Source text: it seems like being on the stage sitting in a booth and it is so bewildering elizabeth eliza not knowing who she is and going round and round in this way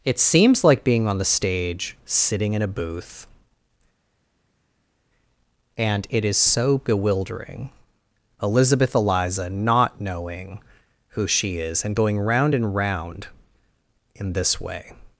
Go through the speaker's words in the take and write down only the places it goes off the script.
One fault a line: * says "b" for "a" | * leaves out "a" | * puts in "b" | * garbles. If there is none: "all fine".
all fine